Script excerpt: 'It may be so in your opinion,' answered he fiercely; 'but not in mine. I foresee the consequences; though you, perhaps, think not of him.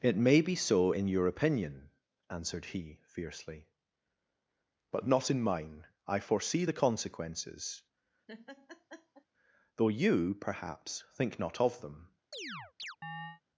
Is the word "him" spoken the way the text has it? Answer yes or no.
no